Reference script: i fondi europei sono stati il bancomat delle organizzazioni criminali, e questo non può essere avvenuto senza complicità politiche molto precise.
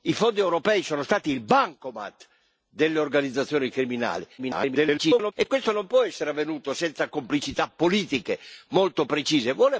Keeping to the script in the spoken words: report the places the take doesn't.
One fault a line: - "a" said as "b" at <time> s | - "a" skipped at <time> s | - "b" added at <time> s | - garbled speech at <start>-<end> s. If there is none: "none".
- garbled speech at 4.4-5.3 s